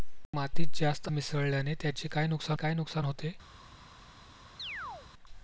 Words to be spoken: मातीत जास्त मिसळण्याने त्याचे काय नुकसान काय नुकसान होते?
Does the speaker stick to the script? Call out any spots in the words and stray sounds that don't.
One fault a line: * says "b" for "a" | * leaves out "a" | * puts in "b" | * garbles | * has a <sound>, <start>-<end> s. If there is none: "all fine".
* has a chirp, 4.6-5.1 s